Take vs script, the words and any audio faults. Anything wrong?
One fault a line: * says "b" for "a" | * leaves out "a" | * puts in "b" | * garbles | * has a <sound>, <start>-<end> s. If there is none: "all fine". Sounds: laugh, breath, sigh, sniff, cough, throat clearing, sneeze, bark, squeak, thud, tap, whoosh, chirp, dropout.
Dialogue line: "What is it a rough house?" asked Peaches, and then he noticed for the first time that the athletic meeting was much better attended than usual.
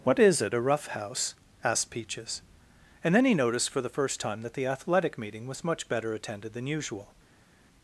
all fine